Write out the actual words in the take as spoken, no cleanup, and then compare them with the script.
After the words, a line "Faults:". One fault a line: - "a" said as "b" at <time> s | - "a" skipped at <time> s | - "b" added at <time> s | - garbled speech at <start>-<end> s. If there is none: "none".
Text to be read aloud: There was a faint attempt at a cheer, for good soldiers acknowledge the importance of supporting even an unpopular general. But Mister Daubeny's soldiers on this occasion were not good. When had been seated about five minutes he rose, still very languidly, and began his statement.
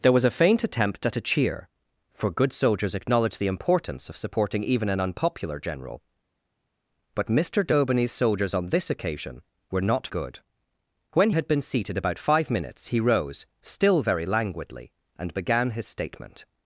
There was a faint attempt at a cheer, for good soldiers acknowledge the importance of supporting even an unpopular general. But Mister Daubeny's soldiers on this occasion were not good. When had been seated about five minutes he rose, still very languidly, and began his statement.
Faults:
none